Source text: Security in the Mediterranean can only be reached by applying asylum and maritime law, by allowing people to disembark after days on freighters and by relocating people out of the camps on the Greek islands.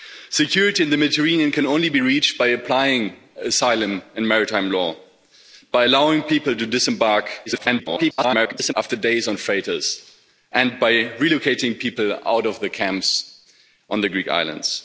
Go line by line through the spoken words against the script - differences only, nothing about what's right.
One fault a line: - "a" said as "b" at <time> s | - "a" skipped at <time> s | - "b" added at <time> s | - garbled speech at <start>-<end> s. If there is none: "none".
- garbled speech at 7.5-8.7 s